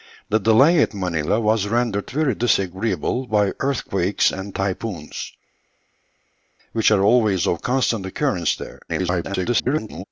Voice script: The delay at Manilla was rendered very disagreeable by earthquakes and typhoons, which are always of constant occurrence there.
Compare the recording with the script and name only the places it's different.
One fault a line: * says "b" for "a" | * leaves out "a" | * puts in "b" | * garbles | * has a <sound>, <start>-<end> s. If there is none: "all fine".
* garbles